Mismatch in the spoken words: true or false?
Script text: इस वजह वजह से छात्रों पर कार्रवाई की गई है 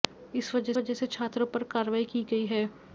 false